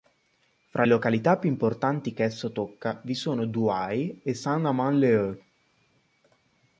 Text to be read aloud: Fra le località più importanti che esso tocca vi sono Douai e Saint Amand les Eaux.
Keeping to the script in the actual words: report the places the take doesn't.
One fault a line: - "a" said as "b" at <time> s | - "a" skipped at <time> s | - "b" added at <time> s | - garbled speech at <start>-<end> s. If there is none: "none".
- "le" skipped at 0.8 s